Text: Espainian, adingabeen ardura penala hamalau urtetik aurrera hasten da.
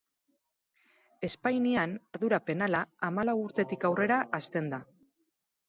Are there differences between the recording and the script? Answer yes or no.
yes